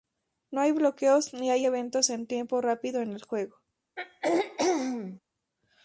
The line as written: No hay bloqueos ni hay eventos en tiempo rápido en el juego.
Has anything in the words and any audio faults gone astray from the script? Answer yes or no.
yes